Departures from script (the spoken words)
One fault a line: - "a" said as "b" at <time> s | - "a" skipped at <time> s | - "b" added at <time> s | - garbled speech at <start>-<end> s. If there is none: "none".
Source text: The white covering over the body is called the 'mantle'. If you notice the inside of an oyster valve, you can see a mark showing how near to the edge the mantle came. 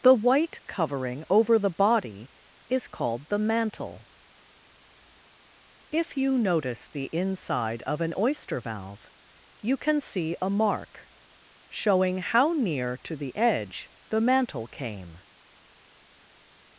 none